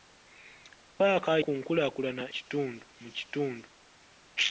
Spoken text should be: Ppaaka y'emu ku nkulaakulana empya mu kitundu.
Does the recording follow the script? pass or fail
fail